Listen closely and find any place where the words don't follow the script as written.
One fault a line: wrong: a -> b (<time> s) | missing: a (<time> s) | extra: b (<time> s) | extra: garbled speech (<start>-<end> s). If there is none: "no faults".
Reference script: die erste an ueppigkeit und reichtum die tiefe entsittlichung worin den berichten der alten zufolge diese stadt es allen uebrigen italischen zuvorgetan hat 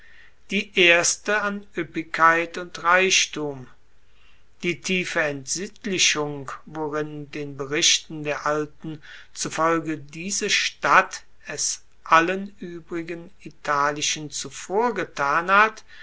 no faults